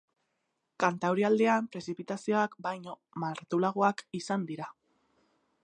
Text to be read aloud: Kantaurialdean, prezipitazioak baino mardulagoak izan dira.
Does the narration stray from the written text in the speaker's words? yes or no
no